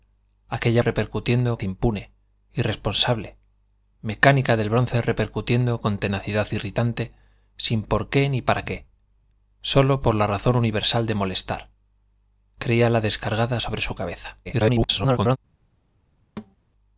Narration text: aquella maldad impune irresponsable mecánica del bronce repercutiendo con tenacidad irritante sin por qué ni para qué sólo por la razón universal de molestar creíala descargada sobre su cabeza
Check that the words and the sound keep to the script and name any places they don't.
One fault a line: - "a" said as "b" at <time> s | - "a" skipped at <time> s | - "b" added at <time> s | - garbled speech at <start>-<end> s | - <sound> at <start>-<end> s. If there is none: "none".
- "maldad" said as "repercutiendo" at 0.8 s
- garbled speech at 14.4-15.4 s
- thud at 16.4-16.6 s